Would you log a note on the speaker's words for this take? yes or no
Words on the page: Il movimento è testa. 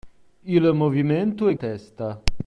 no